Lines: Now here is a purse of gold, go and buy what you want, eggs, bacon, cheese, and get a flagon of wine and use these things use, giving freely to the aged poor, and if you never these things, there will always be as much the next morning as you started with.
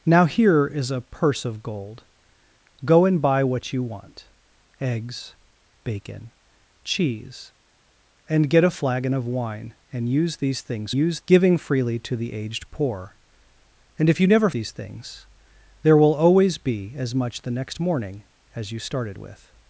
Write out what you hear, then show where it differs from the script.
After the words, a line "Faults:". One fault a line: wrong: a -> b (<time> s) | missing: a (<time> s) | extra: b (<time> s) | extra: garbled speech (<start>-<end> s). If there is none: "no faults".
Now here is a purse of gold, go and buy what you want, eggs, bacon, cheese, and get a flagon of wine and use these things use, giving freely to the aged poor, and if you never these things, there will always be as much the next morning as you started with.
Faults:
no faults